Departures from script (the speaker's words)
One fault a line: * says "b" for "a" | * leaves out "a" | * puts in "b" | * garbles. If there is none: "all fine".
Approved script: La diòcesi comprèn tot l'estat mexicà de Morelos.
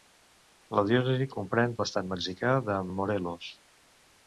* leaves out "tot"